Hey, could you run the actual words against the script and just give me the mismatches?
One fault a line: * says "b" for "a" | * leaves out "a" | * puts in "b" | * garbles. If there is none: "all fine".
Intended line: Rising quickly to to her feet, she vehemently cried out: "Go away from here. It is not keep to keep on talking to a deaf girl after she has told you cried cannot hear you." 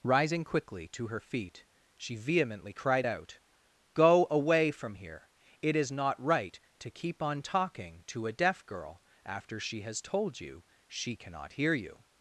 * leaves out "to"
* says "right" for "keep"
* says "she" for "cried"